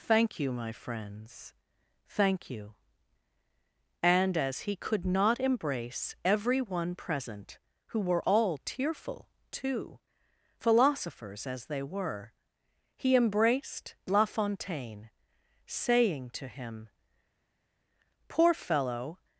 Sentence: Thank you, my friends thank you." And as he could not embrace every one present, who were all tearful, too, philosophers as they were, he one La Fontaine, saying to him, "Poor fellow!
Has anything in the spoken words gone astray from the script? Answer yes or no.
yes